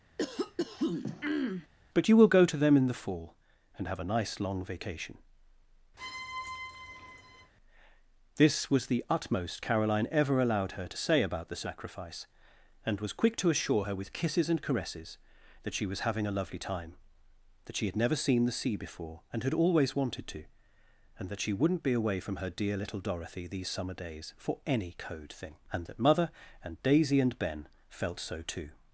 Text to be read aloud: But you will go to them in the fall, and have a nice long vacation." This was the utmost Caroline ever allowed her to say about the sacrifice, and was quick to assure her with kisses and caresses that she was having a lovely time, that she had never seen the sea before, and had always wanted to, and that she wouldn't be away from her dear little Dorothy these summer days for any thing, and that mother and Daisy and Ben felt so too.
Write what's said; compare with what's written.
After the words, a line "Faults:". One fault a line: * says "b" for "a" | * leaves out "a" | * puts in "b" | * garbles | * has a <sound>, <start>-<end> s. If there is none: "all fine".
But you will go to them in the fall, and have a nice long vacation." This was the utmost Caroline ever allowed her to say about the sacrifice, and was quick to assure her with kisses and caresses that she was having a lovely time, that she had never seen the sea before, and had always wanted to, and that she wouldn't be away from her dear little Dorothy these summer days for any code thing, and that mother and Daisy and Ben felt so too.
Faults:
* has a throat clearing, 0.2-1.7 s
* has a squeak, 6.0-7.5 s
* puts in "code"